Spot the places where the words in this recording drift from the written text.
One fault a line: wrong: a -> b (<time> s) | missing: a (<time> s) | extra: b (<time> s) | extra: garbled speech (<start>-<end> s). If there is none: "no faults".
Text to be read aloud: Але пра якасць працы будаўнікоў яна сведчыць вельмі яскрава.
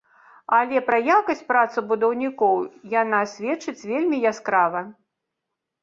no faults